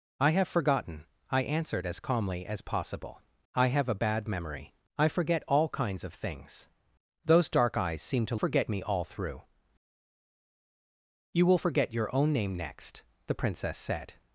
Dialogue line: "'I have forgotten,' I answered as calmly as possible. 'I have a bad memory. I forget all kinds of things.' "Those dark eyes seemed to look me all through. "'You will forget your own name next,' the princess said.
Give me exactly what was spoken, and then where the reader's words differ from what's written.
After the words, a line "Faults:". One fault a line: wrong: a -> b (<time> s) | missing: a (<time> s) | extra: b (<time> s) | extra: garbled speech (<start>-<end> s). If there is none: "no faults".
"'I have forgotten,' I answered as calmly as possible. 'I have a bad memory. I forget all kinds of things.' "Those dark eyes seemed to forget me all through. "'You will forget your own name next,' the princess said.
Faults:
wrong: look -> forget (8.3 s)